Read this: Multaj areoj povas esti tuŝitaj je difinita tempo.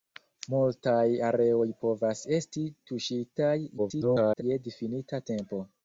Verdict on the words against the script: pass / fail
fail